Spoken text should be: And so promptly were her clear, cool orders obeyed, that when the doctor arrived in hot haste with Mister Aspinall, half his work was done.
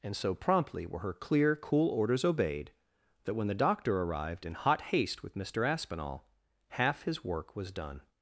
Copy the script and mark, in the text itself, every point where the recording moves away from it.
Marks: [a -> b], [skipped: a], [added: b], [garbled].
And so promptly were her clear, cool orders obeyed, that when the doctor arrived in hot haste with Mister Aspinall, half his work was done.